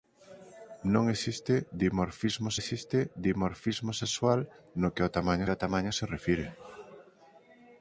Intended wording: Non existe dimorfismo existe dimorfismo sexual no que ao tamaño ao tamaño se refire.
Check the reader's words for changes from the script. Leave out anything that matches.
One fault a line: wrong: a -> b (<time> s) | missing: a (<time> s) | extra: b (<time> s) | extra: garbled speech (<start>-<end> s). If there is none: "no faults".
no faults